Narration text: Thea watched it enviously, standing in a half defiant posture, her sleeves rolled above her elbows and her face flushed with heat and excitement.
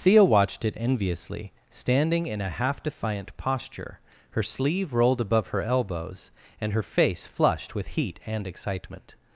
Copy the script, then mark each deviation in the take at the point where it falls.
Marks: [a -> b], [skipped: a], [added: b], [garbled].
Thea watched it enviously, standing in a half defiant posture, her [sleeves -> sleeve] rolled above her elbows and her face flushed with heat and excitement.